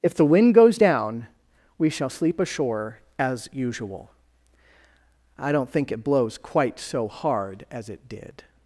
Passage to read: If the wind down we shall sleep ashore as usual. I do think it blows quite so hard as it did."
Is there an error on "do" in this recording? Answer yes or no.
yes